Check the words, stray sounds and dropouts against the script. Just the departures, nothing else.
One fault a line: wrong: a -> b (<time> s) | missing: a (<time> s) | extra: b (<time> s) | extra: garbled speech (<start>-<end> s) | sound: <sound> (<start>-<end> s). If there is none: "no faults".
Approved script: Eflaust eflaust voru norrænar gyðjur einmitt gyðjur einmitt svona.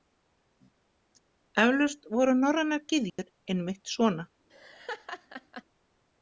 missing: eflaust (2.1 s)
sound: dropout (3.1-3.2 s)
missing: gyðjur einmitt (4.0 s)
sound: laugh (4.5-5.6 s)